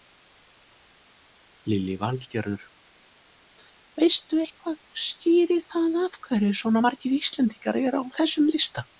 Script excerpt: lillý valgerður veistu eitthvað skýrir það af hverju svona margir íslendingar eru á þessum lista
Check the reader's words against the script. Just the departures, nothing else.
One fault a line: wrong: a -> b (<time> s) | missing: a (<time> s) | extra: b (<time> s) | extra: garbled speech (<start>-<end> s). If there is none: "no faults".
no faults